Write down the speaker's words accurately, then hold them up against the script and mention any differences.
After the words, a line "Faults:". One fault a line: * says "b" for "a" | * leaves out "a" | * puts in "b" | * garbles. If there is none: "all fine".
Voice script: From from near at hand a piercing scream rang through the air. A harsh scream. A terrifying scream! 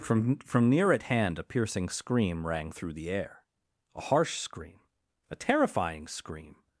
From from near at hand a piercing scream rang through the air. A harsh scream. A terrifying scream!
Faults:
all fine